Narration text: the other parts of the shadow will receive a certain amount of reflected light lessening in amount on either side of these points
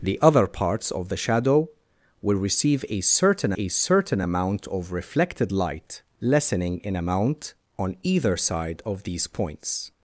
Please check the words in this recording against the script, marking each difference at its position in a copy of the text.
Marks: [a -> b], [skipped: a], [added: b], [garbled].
the other parts of the shadow will receive a certain [added: a certain] amount of reflected light lessening in amount on either side of these points